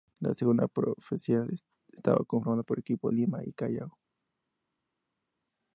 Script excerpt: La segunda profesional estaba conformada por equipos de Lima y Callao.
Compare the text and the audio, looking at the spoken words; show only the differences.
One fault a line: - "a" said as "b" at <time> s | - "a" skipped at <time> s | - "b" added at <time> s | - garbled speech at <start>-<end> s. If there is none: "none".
- "de" skipped at 3.1 s